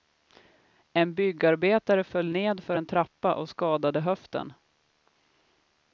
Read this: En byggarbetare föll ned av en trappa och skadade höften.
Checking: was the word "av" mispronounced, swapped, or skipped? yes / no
yes